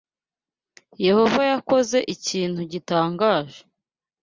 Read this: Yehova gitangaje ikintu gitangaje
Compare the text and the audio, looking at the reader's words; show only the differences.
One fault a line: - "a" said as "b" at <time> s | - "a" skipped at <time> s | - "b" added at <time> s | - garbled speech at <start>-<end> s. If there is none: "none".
- "gitangaje" said as "yakoze" at 1.5 s